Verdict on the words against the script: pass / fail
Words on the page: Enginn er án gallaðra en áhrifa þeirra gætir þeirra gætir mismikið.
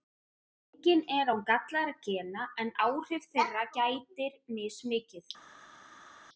fail